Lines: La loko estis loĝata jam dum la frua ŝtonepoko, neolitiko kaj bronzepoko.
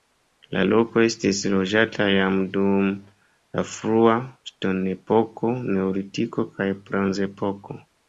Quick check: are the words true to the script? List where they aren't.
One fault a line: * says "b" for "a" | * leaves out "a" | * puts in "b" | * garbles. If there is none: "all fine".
all fine